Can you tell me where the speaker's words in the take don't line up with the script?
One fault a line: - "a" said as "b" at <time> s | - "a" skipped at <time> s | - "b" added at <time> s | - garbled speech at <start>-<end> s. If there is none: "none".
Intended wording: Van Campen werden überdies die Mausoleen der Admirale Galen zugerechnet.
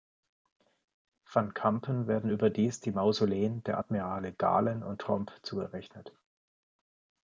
- "und Tromp" added at 4.8 s